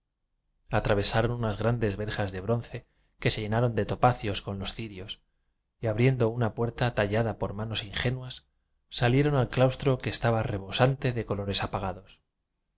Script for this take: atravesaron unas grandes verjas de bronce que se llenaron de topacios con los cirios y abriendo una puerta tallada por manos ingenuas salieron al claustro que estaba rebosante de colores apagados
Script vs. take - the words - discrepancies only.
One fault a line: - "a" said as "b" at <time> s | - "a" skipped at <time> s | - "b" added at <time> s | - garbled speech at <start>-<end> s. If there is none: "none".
none